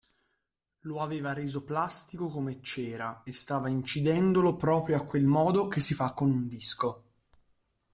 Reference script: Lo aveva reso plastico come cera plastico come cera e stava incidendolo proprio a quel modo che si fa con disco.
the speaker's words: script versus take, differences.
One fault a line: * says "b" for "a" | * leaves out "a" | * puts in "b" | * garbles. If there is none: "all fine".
* leaves out "plastico come cera"
* puts in "un"